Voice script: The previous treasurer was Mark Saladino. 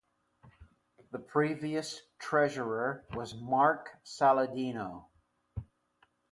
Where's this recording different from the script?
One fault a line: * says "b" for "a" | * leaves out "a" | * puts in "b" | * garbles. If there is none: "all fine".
all fine